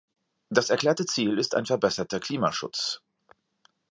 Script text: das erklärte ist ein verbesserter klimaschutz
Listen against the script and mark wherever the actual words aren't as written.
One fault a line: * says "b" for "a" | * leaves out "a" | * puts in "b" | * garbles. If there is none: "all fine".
* puts in "ziel"